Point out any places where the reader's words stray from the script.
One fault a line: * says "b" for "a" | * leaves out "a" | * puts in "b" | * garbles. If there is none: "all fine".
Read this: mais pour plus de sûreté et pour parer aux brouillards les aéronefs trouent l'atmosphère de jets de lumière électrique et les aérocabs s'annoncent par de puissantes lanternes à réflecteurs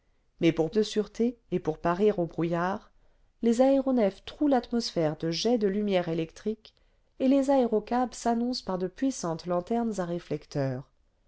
* leaves out "plus"